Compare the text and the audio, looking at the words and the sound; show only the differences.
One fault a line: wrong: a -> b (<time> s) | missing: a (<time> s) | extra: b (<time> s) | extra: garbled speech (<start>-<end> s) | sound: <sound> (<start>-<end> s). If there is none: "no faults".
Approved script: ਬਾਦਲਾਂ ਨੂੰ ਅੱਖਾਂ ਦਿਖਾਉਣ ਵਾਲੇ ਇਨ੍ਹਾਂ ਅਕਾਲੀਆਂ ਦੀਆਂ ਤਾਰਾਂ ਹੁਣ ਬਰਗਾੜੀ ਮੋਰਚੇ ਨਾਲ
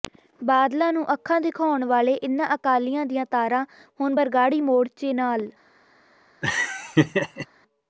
sound: laugh (6.4-7.5 s)